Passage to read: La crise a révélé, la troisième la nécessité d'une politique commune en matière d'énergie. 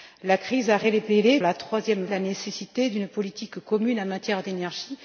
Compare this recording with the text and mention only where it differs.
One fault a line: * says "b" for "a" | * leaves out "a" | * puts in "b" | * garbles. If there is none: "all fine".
all fine